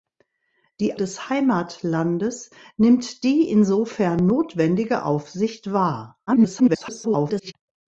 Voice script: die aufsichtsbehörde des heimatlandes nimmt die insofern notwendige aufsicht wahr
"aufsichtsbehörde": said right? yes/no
no